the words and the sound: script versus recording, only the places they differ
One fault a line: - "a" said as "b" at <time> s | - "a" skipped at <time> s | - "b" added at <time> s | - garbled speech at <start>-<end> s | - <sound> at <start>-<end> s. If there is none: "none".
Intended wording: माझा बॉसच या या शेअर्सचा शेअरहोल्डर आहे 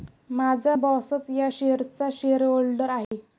- "या" skipped at 1.5 s
- dropout at 3.0-3.1 s